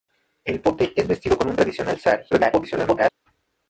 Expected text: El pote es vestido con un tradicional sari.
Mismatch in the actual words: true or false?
true